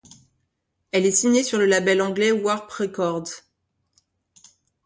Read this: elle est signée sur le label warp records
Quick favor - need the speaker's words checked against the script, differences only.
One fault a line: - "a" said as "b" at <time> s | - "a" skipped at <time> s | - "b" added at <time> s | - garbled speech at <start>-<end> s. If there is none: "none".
- "anglais" added at 2.0 s